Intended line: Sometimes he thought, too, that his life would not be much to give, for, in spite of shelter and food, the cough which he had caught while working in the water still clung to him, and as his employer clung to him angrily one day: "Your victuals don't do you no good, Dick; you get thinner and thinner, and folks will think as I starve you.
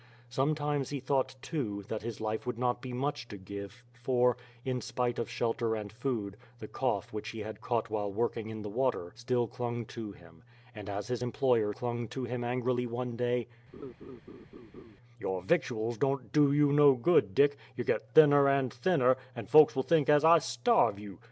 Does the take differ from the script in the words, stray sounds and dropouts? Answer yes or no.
yes